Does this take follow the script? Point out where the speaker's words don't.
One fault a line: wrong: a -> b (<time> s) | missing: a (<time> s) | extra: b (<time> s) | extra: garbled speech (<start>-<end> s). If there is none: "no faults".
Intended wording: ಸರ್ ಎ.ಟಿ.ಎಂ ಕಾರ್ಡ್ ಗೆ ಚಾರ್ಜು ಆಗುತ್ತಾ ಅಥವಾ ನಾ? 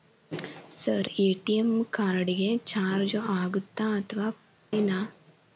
no faults